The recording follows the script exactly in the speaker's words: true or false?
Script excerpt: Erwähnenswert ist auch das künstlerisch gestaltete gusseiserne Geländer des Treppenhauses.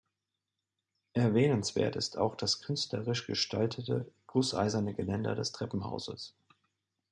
true